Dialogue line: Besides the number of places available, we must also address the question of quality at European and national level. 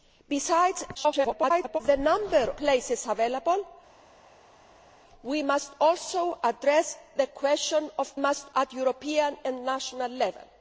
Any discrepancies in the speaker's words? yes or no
yes